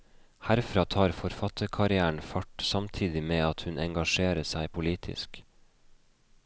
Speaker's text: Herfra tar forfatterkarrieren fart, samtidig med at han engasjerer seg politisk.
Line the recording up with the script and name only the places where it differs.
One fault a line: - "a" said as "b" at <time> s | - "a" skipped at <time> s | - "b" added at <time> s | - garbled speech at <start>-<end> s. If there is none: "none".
- "han" said as "hun" at 3.7 s